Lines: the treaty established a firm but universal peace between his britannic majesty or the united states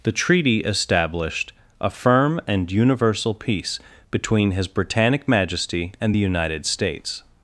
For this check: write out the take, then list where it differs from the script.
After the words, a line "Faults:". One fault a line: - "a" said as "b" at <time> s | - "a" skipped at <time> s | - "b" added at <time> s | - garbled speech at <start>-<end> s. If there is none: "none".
the treaty established a firm and universal peace between his britannic majesty and the united states
Faults:
- "but" said as "and" at 2.5 s
- "or" said as "and" at 6.0 s